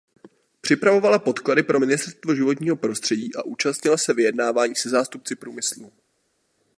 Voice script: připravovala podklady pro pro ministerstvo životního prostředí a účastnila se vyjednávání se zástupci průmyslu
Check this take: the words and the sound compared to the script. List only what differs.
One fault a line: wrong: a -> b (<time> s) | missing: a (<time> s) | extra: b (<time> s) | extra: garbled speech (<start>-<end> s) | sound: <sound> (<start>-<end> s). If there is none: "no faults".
missing: pro (1.8 s)